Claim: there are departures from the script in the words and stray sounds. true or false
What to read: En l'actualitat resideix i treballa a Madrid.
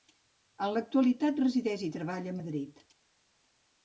false